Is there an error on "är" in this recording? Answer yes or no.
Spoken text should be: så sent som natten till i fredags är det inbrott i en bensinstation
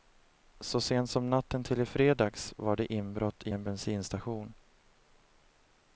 yes